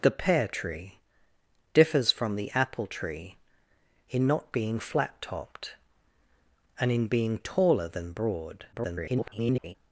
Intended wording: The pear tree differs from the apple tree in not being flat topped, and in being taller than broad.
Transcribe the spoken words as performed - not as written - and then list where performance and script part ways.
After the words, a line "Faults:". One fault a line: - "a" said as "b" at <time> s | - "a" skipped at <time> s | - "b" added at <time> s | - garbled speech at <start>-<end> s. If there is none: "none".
The pear tree differs from the apple tree in not being flat topped, and in being taller than broad. [garbled]
Faults:
- garbled speech at 8.7-9.7 s